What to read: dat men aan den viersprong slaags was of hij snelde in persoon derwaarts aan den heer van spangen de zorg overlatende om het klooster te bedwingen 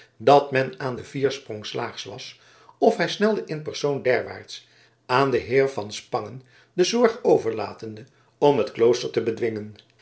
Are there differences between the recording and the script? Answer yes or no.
no